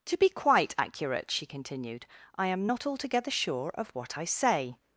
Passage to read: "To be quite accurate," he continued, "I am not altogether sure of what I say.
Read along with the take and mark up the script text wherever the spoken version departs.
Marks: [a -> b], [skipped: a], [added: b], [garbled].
"To be quite accurate," [he -> she] continued, "I am not altogether sure of what I say.